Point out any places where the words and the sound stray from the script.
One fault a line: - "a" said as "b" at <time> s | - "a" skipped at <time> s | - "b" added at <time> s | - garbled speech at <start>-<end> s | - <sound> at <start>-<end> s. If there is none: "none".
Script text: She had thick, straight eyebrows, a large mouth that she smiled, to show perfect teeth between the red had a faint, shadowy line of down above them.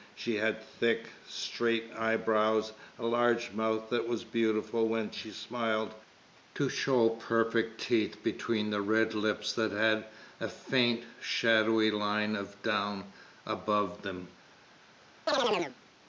- "was beautiful when" added at 4.1 s
- "lips that" added at 9.1 s
- chirp at 15.3-15.8 s